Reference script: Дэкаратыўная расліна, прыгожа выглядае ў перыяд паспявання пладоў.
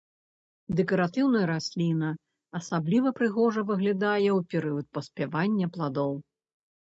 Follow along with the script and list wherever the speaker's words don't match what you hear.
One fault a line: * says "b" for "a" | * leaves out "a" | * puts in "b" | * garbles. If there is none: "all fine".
* puts in "асабліва"